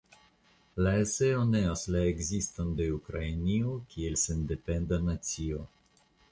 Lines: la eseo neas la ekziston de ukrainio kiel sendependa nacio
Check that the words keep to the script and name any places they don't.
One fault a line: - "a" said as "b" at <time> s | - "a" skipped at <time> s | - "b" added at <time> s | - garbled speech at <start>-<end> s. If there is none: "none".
none